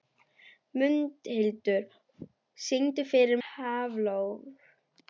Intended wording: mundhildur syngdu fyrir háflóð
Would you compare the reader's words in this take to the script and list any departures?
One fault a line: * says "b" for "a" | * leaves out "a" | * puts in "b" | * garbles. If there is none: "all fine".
all fine